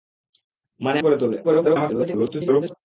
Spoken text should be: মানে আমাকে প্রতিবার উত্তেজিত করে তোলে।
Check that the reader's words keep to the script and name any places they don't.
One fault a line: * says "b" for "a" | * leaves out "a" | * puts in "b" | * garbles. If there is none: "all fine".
* leaves out "আমাকে প্রতিবার উত্তেজিত"
* garbles